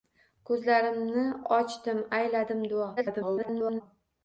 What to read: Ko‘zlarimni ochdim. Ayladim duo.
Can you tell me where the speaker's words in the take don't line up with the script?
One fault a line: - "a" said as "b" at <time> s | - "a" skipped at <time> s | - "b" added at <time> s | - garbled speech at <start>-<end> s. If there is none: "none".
- garbled speech at 3.0-3.8 s